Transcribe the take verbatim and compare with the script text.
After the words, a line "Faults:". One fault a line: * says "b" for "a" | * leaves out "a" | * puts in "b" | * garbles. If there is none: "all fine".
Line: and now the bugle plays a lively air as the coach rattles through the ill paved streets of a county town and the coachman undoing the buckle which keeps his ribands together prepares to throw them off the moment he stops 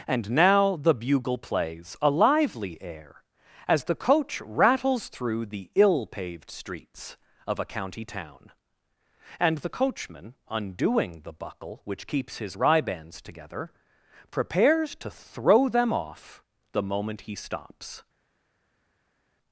and now the bugle plays a lively air as the coach rattles through the ill paved streets of a county town and the coachman undoing the buckle which keeps his ribands together prepares to throw them off the moment he stops
Faults:
all fine